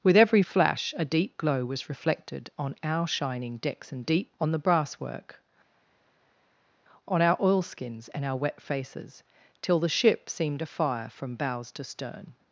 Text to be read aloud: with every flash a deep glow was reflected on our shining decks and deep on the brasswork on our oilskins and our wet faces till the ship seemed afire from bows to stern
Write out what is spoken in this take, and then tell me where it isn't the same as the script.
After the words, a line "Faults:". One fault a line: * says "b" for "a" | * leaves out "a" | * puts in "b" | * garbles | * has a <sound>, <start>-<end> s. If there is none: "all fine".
with every flash a deep glow was reflected on our shining decks and deep on the brasswork on our oilskins and our wet faces till the ship seemed afire from bows to stern
Faults:
all fine